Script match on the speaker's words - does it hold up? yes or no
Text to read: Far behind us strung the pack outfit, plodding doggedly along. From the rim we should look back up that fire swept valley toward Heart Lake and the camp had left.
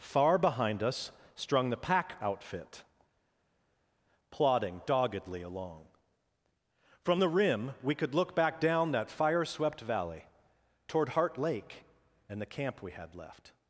no